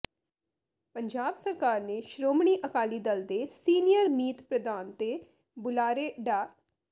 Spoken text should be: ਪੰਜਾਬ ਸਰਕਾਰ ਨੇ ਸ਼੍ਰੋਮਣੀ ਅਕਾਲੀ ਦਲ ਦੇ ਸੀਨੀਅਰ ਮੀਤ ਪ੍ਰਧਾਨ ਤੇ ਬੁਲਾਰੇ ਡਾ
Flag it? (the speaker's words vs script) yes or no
no